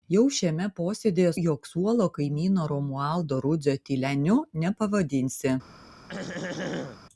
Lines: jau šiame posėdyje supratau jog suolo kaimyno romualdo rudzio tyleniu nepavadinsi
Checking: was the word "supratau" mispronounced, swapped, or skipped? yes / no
yes